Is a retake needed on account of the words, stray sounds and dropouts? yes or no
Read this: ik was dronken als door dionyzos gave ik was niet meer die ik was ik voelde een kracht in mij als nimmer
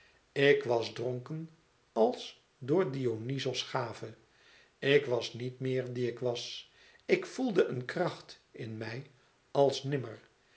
no